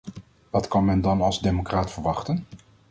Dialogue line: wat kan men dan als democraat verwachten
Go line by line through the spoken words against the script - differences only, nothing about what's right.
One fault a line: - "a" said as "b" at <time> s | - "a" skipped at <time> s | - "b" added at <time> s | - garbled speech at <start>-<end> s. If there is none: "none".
none